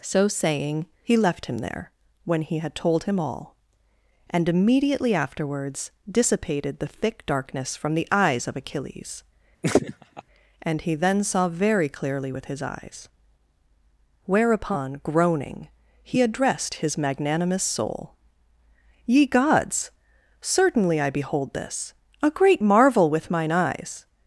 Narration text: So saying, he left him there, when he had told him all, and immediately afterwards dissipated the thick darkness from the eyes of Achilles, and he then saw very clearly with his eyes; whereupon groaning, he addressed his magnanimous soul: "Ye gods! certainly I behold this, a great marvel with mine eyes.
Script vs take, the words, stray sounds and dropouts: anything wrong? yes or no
yes